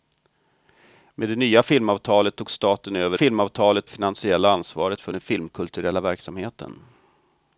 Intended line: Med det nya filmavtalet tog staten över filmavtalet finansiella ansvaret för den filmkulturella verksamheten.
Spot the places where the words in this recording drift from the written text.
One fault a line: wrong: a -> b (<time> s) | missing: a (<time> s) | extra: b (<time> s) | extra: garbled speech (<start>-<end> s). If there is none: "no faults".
no faults